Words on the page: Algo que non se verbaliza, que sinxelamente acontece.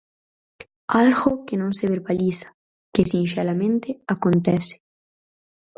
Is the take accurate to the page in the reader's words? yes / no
yes